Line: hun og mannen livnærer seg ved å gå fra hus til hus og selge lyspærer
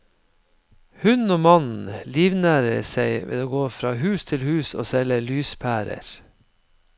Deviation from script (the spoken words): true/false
false